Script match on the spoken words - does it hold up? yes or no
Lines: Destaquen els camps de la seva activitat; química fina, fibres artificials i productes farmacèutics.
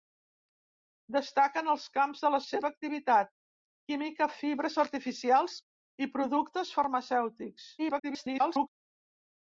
no